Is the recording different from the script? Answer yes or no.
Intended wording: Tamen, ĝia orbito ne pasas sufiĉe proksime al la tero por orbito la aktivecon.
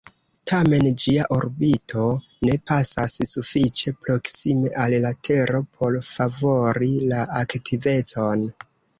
yes